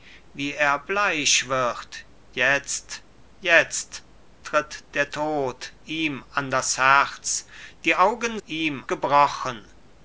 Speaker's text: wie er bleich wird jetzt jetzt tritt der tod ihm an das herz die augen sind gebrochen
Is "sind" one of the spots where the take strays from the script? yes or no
yes